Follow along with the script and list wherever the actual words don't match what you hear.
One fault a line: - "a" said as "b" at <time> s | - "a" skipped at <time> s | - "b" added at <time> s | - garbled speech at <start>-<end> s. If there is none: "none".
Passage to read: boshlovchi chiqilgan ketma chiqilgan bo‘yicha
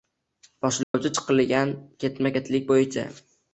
- "chiqilgan" said as "ketlik" at 2.4 s